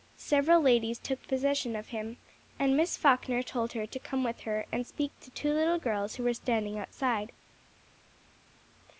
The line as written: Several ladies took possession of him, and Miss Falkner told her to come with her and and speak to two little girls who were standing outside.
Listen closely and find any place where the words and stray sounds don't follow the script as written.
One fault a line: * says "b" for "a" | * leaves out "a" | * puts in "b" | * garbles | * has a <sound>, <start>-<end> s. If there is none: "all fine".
* leaves out "and"